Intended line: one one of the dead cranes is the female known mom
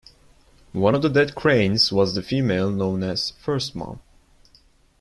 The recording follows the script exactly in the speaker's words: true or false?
false